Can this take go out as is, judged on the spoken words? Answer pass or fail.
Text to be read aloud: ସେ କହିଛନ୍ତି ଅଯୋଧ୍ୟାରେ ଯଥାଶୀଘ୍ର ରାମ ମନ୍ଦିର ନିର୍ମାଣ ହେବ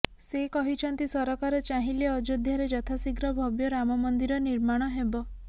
fail